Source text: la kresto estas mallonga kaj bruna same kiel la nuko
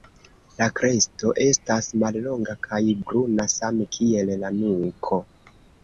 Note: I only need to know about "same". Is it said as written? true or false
true